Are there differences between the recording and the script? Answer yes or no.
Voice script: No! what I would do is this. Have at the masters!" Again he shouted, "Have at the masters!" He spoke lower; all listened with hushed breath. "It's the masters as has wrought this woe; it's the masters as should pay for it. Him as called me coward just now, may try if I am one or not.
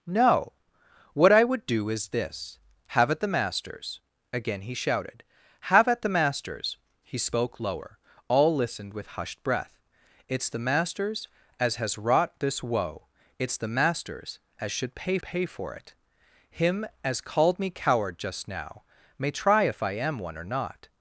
yes